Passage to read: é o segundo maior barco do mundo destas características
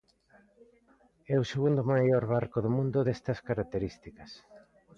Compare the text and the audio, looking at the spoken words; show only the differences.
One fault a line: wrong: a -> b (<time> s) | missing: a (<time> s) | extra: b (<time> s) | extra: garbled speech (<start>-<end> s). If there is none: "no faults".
no faults